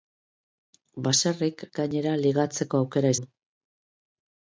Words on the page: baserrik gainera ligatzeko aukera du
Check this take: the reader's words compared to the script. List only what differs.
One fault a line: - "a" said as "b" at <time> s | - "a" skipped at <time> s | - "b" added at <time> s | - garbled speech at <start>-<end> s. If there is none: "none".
none